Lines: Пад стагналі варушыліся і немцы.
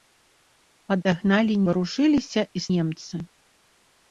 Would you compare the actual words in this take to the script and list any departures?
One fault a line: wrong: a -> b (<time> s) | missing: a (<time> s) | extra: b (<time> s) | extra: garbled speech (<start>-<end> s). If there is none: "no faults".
no faults